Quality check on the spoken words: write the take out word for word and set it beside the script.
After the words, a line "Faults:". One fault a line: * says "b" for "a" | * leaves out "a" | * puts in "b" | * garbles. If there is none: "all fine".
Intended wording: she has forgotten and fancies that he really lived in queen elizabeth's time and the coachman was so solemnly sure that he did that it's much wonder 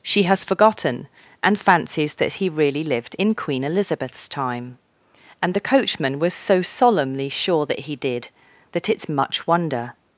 she has forgotten and fancies that he really lived in queen elizabeth's time and the coachman was so solemnly sure that he did that it's much wonder
Faults:
all fine